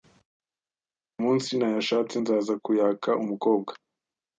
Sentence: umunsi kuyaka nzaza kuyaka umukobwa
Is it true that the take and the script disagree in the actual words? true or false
true